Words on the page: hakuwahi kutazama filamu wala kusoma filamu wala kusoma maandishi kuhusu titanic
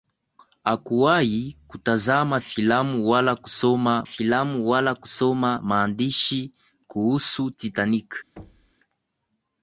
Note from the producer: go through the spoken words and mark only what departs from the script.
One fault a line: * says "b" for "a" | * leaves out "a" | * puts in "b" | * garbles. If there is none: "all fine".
all fine